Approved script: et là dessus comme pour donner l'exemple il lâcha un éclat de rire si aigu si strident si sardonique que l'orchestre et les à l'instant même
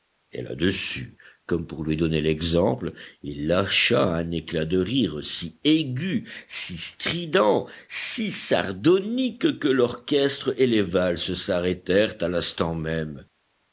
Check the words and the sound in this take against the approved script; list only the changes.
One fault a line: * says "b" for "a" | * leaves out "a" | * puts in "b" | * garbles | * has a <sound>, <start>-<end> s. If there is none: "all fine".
* puts in "lui"
* puts in "valses s'arrêtèrent"